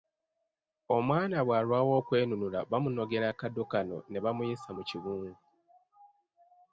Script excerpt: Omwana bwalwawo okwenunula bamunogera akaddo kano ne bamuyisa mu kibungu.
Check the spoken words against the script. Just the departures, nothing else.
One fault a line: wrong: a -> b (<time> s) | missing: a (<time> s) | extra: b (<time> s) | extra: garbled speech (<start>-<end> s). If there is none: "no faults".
no faults